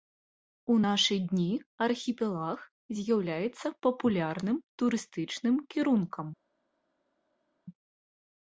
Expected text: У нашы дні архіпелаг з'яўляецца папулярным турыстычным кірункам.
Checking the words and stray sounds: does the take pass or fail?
pass